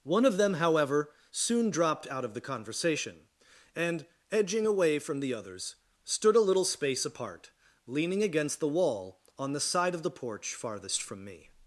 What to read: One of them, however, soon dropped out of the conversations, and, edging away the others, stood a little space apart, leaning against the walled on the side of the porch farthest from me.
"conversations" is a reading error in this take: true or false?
true